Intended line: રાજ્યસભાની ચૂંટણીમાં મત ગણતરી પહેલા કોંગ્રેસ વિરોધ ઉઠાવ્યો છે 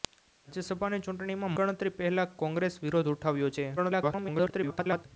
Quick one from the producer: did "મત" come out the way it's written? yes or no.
no